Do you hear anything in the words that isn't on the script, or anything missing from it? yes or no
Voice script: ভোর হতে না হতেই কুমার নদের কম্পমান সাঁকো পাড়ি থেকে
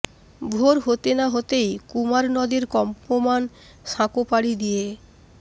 yes